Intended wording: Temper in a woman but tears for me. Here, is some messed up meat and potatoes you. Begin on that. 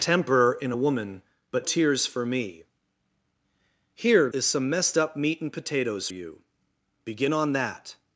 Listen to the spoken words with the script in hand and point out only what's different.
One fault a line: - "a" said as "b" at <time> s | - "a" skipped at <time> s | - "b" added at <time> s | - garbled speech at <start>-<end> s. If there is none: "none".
none